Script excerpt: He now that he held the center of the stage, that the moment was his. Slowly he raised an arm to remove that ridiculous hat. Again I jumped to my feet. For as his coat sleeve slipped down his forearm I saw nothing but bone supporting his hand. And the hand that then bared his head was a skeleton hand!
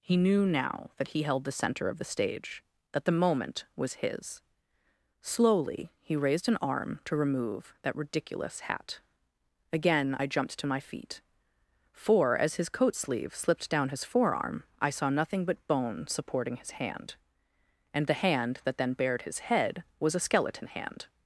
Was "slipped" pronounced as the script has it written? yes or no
yes